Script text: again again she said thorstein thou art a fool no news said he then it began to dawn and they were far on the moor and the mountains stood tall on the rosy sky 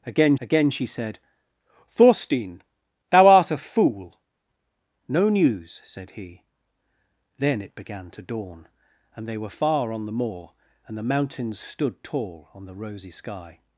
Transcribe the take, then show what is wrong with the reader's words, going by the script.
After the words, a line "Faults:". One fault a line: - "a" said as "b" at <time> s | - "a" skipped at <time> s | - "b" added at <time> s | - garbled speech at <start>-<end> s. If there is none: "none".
again again she said thorstein thou art a fool no news said he then it began to dawn and they were far on the moor and the mountains stood tall on the rosy sky
Faults:
none